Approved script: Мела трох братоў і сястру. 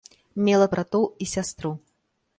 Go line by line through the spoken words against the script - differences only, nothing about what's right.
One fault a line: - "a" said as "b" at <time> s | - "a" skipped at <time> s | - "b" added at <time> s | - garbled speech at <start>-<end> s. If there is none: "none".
- "трох" skipped at 0.7 s